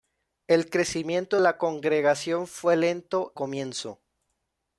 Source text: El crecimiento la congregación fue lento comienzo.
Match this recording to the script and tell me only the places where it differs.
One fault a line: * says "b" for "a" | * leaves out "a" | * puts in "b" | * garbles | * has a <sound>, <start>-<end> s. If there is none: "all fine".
all fine